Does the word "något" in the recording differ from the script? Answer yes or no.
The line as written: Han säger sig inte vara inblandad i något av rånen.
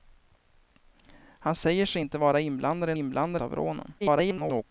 yes